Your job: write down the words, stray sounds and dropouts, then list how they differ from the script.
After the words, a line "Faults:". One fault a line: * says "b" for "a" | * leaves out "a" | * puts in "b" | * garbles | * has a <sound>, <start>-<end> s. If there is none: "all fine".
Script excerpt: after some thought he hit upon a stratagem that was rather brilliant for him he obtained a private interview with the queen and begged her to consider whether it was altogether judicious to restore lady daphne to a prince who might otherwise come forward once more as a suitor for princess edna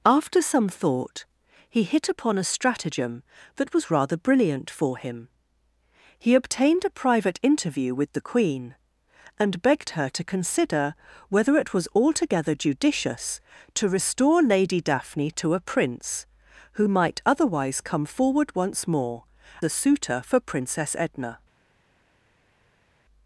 after some thought he hit upon a stratagem that was rather brilliant for him he obtained a private interview with the queen and begged her to consider whether it was altogether judicious to restore lady daphne to a prince who might otherwise come forward once more a suitor for princess edna
Faults:
* leaves out "as"